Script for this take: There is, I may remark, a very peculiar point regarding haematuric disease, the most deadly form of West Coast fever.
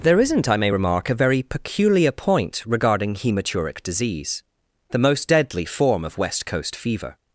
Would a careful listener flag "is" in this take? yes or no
yes